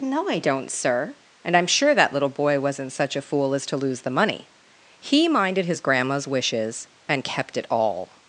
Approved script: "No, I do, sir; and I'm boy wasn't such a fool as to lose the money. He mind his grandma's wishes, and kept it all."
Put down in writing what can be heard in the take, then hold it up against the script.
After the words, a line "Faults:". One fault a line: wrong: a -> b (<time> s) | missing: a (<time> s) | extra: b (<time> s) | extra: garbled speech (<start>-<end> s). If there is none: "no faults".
"No, I don't, sir; and I'm sure that little boy wasn't such a fool as to lose the money. He minded his grandma's wishes, and kept it all."
Faults:
wrong: do -> don't (0.4 s)
extra: sure that little (1.7 s)
wrong: mind -> minded (5.3 s)